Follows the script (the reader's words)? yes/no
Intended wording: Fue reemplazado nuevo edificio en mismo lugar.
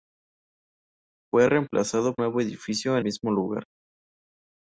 yes